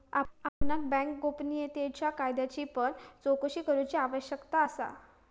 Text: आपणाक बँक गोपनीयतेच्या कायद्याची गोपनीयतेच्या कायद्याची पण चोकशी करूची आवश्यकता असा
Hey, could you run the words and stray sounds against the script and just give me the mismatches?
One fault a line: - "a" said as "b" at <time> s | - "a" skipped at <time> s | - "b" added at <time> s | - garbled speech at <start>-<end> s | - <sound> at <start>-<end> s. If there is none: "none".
- dropout at 0.5-0.6 s
- "गोपनीयतेच्या कायद्याची" skipped at 2.6 s